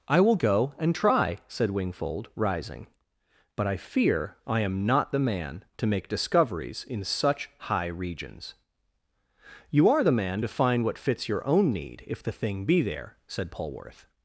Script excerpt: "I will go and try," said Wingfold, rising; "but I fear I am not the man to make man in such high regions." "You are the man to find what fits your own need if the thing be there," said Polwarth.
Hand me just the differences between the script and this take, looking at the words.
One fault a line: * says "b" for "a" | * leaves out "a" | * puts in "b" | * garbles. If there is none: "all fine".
* says "discoveries" for "man"